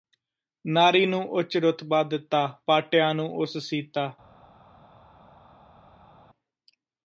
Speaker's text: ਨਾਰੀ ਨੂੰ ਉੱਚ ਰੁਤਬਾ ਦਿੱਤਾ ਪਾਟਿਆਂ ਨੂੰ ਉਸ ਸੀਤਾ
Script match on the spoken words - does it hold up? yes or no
yes